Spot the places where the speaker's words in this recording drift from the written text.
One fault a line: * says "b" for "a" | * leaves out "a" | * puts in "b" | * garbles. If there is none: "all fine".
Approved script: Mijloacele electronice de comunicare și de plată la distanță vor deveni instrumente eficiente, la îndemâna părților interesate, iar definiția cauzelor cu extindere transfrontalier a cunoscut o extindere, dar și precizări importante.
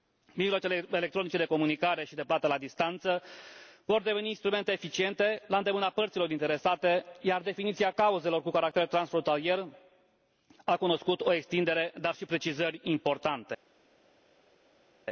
* says "caracter" for "extindere"